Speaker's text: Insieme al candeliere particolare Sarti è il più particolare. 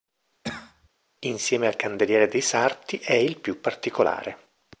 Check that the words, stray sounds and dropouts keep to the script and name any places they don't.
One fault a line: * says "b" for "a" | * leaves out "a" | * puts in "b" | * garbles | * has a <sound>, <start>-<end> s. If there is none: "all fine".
* has a cough, 0.4-0.9 s
* says "dei" for "particolare"